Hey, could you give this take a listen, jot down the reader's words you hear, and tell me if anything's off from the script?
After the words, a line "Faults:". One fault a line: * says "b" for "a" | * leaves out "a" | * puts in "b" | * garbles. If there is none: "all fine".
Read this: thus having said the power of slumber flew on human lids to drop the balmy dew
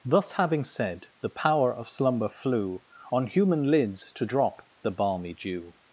thus having said the power of slumber flew on human lids to drop the balmy dew
Faults:
all fine